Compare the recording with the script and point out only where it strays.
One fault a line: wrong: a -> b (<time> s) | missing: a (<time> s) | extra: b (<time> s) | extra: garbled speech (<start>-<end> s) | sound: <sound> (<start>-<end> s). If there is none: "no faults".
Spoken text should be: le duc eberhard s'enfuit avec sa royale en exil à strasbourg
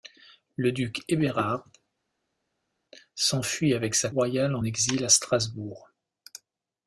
no faults